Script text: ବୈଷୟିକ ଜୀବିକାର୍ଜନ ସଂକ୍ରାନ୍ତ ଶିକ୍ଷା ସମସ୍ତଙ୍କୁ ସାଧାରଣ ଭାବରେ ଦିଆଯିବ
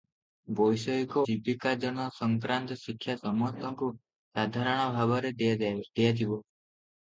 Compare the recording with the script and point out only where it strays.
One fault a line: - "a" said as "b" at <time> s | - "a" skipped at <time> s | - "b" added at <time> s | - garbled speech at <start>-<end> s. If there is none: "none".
none